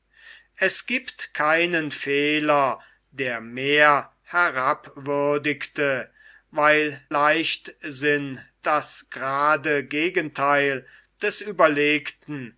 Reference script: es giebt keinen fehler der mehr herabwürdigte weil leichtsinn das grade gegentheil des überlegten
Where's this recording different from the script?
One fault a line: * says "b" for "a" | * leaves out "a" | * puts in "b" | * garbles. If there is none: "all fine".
all fine